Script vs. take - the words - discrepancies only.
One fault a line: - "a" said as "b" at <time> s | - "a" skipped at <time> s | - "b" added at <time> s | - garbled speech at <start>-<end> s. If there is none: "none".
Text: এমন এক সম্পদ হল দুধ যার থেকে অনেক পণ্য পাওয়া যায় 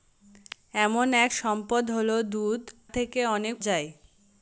- "যার" skipped at 2.6 s
- "পণ্য পাওয়া" skipped at 3.5 s